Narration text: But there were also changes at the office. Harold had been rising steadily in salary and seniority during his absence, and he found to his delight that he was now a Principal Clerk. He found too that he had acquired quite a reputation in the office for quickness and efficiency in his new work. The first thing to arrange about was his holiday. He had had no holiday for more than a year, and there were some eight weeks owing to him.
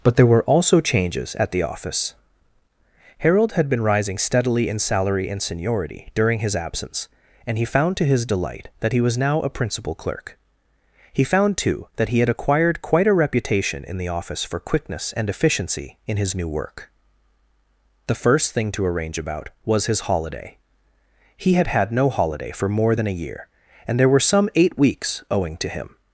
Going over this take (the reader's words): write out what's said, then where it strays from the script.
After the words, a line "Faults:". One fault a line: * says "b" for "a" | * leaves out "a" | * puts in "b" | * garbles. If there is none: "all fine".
But there were also changes at the office. Harold had been rising steadily in salary and seniority during his absence, and he found to his delight that he was now a Principal Clerk. He found too that he had acquired quite a reputation in the office for quickness and efficiency in his new work. The first thing to arrange about was his holiday. He had had no holiday for more than a year, and there were some eight weeks owing to him.
Faults:
all fine